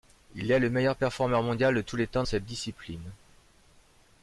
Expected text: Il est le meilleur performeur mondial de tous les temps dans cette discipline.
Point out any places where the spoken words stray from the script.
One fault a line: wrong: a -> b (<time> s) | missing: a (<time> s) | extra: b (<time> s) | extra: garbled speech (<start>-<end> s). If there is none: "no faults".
missing: dans (2.2 s)